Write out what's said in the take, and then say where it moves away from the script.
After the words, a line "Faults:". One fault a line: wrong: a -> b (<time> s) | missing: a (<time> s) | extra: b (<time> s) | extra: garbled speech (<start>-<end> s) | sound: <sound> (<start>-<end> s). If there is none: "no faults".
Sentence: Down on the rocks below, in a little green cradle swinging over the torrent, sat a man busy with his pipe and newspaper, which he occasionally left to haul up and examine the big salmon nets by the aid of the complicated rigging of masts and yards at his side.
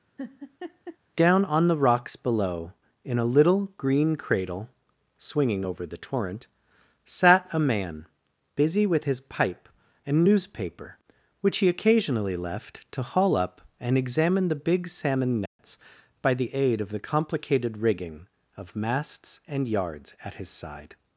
Down on the rocks below, in a little green cradle swinging over the torrent, sat a man busy with his pipe and newspaper, which he occasionally left to haul up and examine the big salmon nets by the aid of the complicated rigging of masts and yards at his side.
Faults:
sound: laugh (0.2-1.0 s)
sound: dropout (15.5-15.6 s)